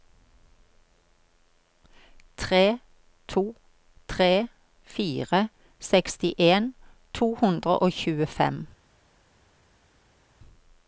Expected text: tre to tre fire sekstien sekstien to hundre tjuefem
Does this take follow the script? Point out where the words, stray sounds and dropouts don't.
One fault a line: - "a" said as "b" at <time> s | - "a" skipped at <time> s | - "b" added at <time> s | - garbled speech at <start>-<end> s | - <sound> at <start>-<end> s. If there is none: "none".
- "sekstien" skipped at 6.7 s
- "og" added at 7.8 s